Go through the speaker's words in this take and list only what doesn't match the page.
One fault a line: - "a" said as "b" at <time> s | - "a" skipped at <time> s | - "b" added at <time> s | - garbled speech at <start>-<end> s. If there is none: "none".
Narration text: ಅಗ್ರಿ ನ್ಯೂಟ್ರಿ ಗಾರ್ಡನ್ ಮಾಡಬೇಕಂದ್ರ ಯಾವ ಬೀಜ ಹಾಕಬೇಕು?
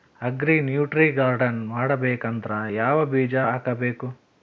none